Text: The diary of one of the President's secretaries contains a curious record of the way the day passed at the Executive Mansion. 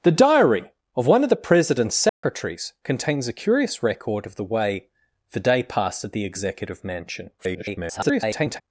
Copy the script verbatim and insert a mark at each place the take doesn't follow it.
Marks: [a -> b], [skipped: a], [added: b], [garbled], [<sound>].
The diary of one of the President's secretaries [dropout] contains a curious record of the way the day passed at the Executive Mansion. [garbled]